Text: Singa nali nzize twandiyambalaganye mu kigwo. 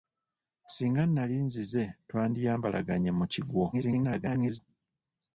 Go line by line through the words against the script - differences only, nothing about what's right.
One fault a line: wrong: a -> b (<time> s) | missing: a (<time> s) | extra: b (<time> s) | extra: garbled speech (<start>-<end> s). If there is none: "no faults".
extra: garbled speech (3.7-4.6 s)